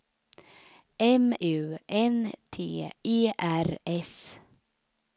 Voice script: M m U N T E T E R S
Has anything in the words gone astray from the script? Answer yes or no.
yes